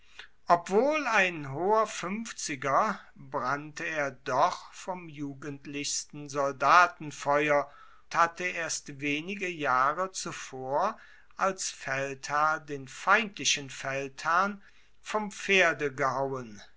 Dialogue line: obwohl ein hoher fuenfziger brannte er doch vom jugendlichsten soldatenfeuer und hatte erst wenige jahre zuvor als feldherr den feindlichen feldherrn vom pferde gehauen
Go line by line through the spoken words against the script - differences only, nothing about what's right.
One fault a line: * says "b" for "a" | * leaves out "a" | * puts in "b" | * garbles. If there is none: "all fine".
* leaves out "und"